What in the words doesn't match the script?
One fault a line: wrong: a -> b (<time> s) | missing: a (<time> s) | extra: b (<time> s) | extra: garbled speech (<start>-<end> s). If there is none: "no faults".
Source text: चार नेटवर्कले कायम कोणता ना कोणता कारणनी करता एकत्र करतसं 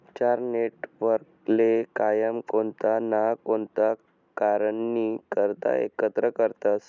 no faults